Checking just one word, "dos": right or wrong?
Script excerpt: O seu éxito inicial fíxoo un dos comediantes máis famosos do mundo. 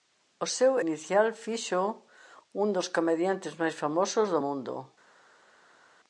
right